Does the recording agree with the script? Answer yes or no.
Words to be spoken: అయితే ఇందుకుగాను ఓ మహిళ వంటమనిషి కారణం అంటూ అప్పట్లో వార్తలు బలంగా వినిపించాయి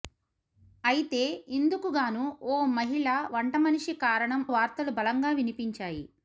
no